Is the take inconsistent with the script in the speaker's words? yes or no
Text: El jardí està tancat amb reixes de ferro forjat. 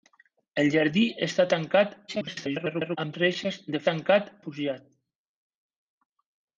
yes